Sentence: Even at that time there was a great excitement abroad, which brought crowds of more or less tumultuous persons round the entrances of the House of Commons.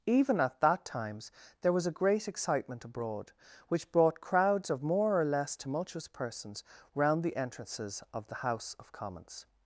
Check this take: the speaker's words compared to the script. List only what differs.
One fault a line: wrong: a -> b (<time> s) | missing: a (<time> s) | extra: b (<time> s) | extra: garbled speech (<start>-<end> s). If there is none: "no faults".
wrong: time -> times (0.8 s)